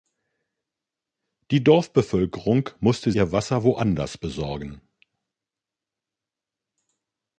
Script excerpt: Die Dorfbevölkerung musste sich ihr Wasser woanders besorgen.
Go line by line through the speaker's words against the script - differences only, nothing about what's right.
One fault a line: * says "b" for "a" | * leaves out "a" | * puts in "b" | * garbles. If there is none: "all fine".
* leaves out "sich"